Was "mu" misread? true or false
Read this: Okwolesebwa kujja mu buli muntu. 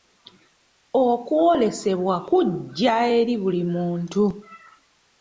true